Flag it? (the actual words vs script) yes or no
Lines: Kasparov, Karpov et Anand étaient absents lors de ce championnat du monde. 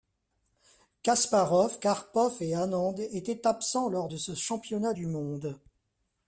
no